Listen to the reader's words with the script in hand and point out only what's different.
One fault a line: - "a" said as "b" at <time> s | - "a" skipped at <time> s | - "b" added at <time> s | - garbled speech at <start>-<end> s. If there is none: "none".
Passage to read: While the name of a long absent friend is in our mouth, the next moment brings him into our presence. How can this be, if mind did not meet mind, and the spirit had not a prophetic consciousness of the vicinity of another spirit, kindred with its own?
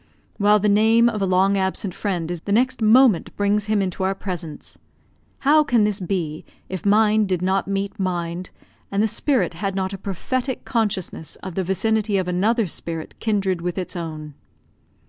- "in our mouth" skipped at 2.4 s